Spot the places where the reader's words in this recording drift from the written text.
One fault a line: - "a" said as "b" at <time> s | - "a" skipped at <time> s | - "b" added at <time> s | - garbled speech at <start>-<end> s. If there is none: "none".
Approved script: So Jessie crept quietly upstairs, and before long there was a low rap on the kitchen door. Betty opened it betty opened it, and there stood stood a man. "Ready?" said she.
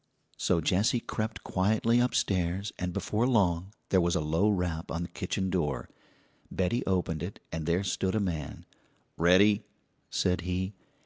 - "betty opened it" skipped at 7.4 s
- "stood" skipped at 8.1 s
- "she" said as "he" at 10.4 s